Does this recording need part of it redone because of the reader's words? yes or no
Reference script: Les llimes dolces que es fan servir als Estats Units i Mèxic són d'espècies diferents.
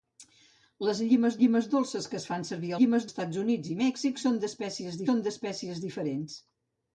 yes